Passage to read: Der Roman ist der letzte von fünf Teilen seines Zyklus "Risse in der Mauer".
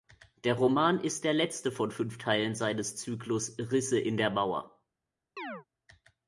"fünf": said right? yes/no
yes